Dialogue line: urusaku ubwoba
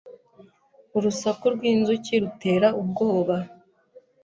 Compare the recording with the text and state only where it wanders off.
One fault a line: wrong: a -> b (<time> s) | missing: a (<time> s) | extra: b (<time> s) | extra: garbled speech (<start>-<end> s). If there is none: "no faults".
extra: rwinzuki rutera (1.5 s)